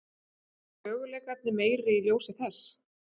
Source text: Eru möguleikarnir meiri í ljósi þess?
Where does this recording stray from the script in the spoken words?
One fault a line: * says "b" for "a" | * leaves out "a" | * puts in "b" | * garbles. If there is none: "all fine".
all fine